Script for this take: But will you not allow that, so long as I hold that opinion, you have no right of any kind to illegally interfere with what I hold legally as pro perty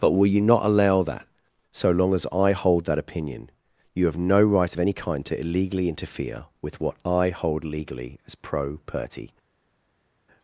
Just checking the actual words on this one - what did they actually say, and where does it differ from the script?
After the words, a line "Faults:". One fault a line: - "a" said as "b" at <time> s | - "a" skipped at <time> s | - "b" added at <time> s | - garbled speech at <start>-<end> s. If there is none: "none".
But will you not allow that, so long as I hold that opinion, you have no right of any kind to illegally interfere with what I hold legally as pro perty
Faults:
none